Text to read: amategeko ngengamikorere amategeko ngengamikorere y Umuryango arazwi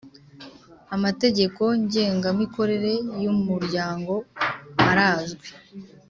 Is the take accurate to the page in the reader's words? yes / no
no